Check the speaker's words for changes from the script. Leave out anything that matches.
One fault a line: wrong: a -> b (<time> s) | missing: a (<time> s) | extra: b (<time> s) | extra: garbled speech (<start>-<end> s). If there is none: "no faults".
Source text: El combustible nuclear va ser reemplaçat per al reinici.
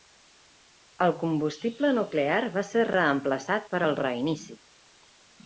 no faults